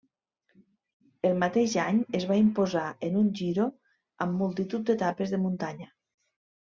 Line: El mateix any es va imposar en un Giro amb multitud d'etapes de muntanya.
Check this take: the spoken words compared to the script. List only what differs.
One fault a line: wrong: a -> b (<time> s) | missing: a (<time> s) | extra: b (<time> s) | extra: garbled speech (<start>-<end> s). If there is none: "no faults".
no faults